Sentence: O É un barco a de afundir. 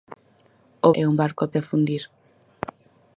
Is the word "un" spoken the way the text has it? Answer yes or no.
yes